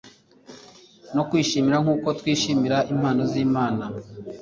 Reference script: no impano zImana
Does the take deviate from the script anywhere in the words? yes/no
yes